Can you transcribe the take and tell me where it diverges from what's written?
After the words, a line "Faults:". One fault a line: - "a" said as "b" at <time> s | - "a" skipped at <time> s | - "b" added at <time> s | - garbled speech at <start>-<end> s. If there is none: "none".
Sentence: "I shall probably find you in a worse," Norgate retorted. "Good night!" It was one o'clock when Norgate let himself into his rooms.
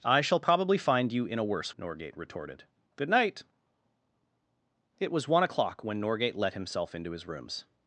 "I shall probably find you in a worse," Norgate retorted. "Good night!" It was one o'clock when Norgate let himself into his rooms.
Faults:
none